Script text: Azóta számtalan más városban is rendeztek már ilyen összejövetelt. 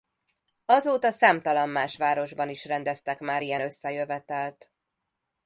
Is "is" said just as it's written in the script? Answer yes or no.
yes